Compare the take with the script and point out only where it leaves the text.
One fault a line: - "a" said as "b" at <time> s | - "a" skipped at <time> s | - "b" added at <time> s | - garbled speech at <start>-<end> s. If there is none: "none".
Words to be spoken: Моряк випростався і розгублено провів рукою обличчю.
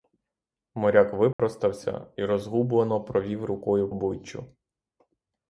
none